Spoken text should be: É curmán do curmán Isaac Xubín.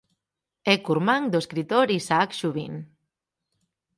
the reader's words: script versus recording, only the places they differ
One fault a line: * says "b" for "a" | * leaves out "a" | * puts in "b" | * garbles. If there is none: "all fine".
* says "escritor" for "curmán"